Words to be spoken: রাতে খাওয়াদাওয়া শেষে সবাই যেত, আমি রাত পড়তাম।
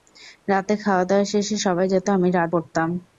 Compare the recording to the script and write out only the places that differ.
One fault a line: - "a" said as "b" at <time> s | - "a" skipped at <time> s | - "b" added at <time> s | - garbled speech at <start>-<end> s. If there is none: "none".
none